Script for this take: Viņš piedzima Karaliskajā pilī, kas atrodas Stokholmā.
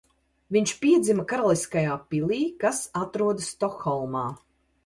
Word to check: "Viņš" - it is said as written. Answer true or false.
true